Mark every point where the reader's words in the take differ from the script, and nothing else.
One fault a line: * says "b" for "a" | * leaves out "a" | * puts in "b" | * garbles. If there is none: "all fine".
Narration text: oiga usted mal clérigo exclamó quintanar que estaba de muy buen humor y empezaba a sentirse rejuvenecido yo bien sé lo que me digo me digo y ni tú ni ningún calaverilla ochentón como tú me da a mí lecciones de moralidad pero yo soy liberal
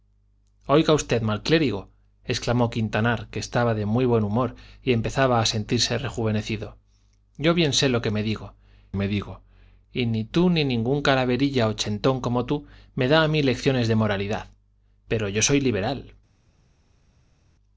all fine